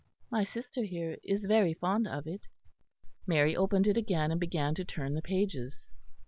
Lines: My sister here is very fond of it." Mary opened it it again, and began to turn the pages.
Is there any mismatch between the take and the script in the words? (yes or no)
yes